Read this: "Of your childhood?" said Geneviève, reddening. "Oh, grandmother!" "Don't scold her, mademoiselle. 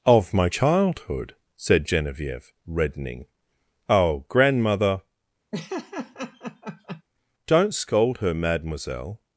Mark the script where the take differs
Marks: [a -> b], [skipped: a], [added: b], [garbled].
"Of [your -> my] childhood?" said Geneviève, reddening. "Oh, grandmother!" "Don't scold her, mademoiselle.